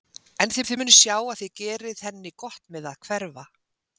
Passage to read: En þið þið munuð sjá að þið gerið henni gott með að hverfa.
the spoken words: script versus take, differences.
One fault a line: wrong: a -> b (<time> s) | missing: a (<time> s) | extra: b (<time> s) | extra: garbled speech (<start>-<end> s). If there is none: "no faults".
no faults